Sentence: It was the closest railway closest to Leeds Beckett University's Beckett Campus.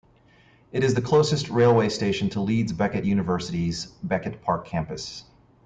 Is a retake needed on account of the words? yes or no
yes